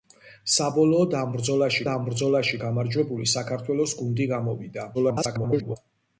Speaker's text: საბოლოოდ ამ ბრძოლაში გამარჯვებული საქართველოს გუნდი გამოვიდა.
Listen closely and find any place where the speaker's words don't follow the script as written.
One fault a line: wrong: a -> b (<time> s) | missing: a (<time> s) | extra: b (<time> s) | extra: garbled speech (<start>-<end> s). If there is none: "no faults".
extra: ამ ბრძოლაში (1.9 s)
extra: garbled speech (4.9-5.8 s)